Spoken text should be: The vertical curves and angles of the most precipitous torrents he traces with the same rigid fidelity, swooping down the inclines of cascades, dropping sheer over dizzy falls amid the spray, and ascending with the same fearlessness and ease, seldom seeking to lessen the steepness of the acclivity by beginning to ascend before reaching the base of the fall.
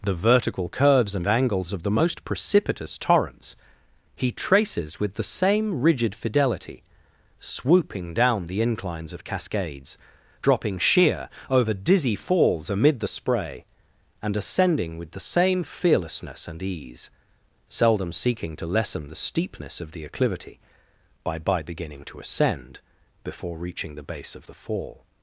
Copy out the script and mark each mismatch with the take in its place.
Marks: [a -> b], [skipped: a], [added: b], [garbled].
The vertical curves and angles of the most precipitous torrents he traces with the same rigid fidelity, swooping down the inclines of cascades, dropping sheer over dizzy falls amid the spray, and ascending with the same fearlessness and ease, seldom seeking to lessen the steepness of the acclivity by [added: by] beginning to ascend before reaching the base of the fall.